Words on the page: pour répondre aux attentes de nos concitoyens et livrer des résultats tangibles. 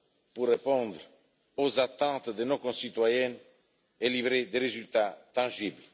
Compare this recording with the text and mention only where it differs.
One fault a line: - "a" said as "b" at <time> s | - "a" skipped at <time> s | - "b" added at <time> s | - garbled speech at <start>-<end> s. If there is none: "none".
none